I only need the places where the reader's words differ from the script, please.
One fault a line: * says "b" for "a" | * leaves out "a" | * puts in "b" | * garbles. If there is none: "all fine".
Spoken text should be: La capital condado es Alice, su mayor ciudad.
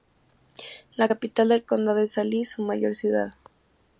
* puts in "del"